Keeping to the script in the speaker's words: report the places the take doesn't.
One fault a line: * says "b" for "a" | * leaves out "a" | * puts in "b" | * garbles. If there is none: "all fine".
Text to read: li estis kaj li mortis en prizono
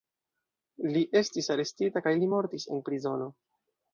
* puts in "arestita"